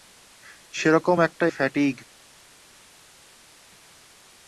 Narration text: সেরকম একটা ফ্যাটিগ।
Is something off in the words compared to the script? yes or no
no